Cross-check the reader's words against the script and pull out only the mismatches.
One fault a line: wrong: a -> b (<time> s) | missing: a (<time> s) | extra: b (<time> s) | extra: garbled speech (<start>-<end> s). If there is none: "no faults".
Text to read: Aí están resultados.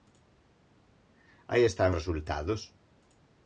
no faults